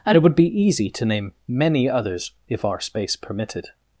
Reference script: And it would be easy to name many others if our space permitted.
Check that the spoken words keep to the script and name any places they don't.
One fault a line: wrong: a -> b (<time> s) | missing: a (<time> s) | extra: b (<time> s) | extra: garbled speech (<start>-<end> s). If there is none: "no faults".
no faults